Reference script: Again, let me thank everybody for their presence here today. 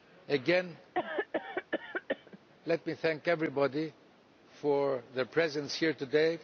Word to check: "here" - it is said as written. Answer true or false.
true